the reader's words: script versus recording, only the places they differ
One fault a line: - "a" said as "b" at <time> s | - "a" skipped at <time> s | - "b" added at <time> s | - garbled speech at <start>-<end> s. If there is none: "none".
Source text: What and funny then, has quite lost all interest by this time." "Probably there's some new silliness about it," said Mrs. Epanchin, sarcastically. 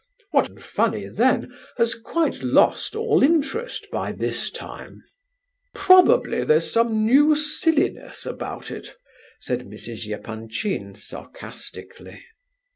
none